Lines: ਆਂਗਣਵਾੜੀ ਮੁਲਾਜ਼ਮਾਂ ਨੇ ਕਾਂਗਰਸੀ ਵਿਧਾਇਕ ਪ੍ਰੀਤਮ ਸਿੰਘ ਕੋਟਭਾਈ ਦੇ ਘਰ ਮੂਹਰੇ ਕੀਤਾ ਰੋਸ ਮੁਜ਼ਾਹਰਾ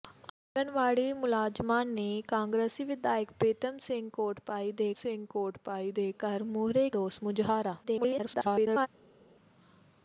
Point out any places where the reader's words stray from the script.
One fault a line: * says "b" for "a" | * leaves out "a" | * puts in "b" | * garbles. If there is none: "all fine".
* puts in "ਸਿੰਘ ਕੋਟਭਾਈ ਦੇ"
* leaves out "ਕੀਤਾ"
* garbles